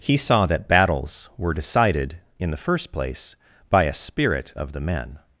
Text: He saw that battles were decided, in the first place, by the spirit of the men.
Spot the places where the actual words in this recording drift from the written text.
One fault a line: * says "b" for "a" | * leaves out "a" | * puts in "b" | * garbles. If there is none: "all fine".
* says "a" for "the"